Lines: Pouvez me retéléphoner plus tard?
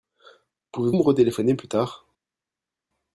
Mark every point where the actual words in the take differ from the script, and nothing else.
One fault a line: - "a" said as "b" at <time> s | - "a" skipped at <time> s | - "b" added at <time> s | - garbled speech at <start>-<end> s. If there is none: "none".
none